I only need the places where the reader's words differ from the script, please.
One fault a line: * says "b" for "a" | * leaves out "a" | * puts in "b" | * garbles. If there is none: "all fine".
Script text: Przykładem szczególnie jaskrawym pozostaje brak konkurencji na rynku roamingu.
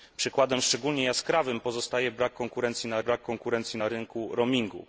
* puts in "brak konkurencji na"